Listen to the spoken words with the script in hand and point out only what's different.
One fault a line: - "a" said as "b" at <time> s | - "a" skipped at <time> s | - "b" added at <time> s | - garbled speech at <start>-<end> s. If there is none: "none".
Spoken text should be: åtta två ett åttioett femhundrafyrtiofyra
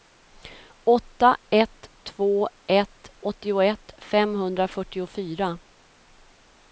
- "ett" added at 1.5 s